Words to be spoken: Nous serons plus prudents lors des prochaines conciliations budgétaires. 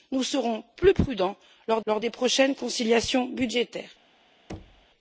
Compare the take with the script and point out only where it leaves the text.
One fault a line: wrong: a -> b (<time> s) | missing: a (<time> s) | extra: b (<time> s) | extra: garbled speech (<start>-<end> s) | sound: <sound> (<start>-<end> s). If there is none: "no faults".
extra: lors (1.8 s)
sound: thud (4.5-4.9 s)